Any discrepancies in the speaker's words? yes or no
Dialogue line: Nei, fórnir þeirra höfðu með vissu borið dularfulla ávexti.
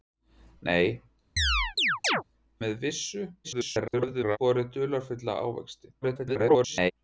yes